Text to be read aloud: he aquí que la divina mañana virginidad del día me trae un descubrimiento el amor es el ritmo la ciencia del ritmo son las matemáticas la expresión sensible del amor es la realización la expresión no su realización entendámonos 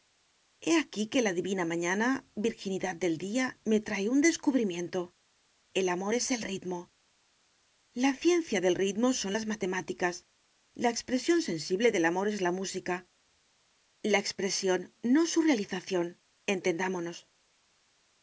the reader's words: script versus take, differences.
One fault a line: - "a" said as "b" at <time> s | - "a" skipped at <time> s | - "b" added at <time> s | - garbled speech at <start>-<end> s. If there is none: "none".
- "realización" said as "música" at 12.5 s